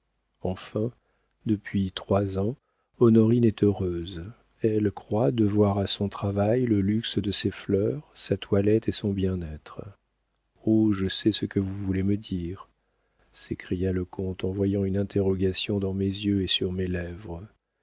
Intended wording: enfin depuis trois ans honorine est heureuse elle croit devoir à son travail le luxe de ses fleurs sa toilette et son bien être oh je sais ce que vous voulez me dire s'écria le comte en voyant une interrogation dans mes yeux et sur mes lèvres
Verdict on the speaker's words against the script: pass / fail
pass